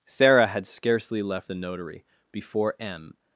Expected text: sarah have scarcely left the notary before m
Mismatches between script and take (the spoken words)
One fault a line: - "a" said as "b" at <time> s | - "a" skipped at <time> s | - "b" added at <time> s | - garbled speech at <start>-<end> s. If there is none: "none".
- "have" said as "had" at 0.5 s